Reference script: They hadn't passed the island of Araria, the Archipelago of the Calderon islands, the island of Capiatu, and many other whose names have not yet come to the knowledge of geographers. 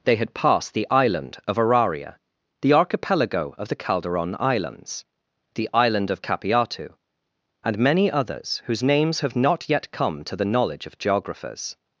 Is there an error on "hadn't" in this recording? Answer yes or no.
yes